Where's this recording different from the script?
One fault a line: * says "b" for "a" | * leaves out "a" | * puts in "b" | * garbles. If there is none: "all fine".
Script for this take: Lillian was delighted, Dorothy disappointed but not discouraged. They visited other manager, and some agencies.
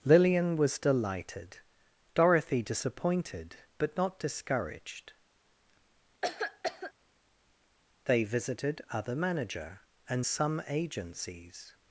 all fine